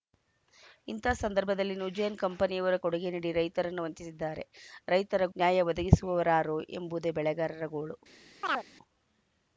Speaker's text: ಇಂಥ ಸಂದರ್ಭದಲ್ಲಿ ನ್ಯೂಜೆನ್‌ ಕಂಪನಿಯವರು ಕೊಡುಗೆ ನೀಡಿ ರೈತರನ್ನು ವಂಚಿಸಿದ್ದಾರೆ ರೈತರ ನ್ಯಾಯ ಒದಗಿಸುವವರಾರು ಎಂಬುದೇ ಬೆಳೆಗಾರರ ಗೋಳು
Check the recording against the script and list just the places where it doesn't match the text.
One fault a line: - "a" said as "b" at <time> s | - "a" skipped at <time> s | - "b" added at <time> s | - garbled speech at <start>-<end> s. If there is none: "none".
none